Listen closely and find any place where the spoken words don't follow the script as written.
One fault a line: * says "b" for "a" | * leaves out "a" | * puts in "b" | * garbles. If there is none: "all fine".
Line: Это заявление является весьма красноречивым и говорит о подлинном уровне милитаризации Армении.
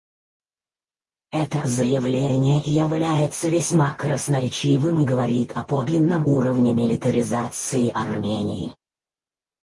all fine